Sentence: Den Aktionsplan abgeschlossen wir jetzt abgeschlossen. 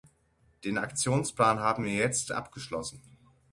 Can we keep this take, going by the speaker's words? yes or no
no